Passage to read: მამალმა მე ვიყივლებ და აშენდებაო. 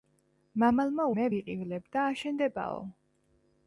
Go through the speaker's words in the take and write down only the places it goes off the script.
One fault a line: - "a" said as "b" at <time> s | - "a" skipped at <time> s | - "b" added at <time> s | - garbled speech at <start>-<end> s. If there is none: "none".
none